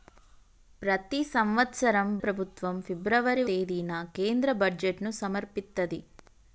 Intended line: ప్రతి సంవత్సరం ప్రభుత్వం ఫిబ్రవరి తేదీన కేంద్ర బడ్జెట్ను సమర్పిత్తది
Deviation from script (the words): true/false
false